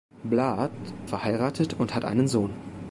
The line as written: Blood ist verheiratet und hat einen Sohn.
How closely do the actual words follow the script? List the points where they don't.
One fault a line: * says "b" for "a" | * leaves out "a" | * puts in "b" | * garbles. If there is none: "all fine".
* leaves out "ist"